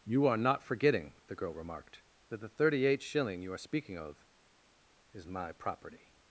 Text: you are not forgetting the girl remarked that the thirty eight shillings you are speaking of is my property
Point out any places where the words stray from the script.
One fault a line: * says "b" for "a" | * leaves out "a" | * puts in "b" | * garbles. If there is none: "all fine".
* says "shilling" for "shillings"